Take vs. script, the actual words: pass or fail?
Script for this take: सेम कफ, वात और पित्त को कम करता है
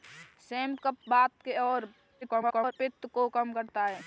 fail